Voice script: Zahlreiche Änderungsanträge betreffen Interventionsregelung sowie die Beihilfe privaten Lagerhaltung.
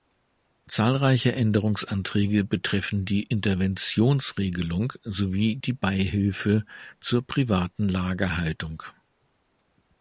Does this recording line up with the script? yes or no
no